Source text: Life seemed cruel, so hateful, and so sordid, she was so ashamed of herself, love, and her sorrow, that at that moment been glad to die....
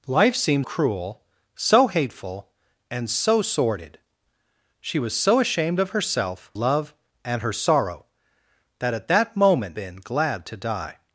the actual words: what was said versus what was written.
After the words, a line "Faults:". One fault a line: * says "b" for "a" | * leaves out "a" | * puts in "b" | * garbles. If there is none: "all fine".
Life seemed cruel, so hateful, and so sordid, she was so ashamed of herself, love, and her sorrow, that at that moment been glad to die....
Faults:
all fine